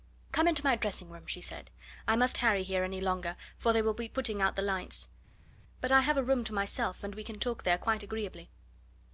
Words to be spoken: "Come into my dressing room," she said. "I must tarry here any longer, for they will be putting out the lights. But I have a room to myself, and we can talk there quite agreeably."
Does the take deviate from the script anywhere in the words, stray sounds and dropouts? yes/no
no